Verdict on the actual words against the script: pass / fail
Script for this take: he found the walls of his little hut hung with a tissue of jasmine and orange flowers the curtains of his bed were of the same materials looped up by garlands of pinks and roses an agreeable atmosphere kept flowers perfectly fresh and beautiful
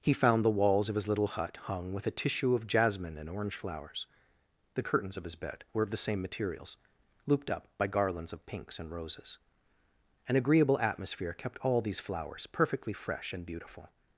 fail